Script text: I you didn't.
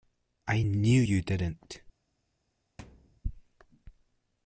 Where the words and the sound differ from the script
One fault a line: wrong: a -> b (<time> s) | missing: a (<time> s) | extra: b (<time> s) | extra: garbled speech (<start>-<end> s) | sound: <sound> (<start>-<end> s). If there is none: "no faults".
extra: knew (0.6 s)
sound: thud (2.8-3.2 s)